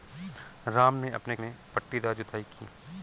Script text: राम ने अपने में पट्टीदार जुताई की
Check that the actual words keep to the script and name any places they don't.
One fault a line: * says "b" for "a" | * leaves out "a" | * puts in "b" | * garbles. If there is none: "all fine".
all fine